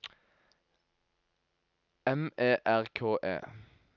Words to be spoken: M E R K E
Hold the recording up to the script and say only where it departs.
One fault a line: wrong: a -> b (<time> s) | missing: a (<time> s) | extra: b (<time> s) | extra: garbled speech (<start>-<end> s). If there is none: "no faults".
no faults